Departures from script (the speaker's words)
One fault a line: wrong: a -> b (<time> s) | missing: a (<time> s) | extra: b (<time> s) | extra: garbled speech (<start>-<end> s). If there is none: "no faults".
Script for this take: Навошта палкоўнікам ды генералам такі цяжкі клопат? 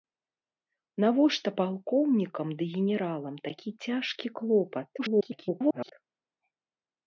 extra: garbled speech (5.0-5.9 s)